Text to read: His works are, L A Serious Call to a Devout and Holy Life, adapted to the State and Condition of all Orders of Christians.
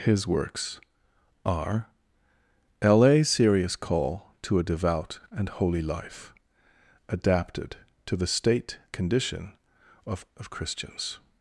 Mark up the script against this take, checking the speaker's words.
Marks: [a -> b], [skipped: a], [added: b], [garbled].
His works are, L A Serious Call to a Devout and Holy Life, adapted to the State [skipped: and] Condition of [skipped: all Orders] of Christians.